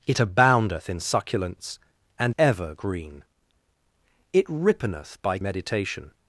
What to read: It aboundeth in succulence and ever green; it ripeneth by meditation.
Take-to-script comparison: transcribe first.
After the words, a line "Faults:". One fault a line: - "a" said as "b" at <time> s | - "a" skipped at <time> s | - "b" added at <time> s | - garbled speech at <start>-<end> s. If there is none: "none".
It aboundeth in succulence and ever green; it ripeneth by meditation.
Faults:
none